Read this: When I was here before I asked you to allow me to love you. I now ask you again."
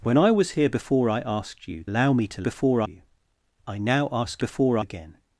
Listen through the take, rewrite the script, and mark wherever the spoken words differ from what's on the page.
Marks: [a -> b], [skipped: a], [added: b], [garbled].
When I was here before I asked you [skipped: to] allow me to [love -> before] you. I now ask [you -> before] again."